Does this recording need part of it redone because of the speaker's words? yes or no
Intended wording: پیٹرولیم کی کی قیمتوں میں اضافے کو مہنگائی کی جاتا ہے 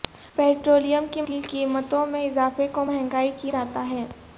no